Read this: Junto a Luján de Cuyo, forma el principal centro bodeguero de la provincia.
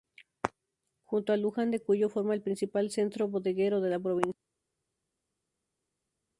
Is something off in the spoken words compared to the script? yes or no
no